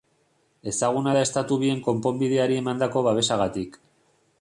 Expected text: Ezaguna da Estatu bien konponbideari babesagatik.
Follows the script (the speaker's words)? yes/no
no